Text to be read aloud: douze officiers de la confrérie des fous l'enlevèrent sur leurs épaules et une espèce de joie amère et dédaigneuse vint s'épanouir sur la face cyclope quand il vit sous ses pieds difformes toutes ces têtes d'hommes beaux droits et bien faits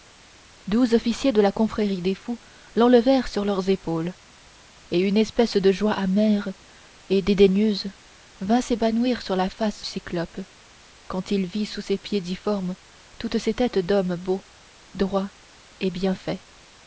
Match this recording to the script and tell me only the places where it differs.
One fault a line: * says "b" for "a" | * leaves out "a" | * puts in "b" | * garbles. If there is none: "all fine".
all fine